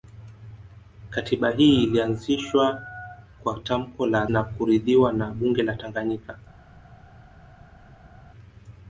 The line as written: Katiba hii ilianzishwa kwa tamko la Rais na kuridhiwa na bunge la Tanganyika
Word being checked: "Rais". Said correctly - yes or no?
no